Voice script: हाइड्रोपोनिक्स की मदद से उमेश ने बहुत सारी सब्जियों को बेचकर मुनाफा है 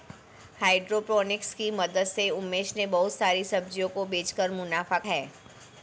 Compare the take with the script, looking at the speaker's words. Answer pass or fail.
pass